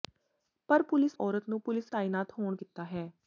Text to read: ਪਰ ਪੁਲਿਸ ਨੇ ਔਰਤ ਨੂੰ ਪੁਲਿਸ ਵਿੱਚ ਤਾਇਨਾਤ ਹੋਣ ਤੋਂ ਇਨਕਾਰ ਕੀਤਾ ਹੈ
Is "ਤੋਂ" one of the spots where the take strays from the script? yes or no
yes